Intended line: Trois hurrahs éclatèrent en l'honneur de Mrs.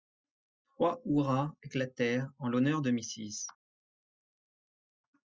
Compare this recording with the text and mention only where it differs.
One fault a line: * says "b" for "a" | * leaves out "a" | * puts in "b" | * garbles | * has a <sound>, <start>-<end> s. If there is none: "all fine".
all fine